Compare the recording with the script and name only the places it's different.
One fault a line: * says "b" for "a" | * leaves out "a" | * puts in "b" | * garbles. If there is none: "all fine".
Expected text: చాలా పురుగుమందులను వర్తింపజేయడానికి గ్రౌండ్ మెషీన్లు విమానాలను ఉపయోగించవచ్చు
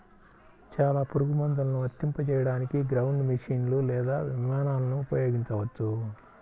* puts in "లేదా"